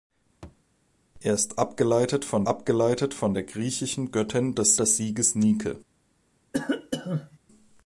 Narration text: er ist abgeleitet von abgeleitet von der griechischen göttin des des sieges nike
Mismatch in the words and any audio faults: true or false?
true